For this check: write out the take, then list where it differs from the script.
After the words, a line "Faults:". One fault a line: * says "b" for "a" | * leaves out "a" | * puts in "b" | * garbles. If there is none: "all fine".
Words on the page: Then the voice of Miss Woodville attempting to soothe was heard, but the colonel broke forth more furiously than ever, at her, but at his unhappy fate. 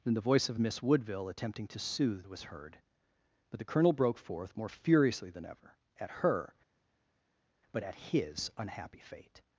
Then the voice of Miss Woodville attempting to soothe was heard, but the colonel broke forth more furiously than ever, at her, but at his unhappy fate.
Faults:
all fine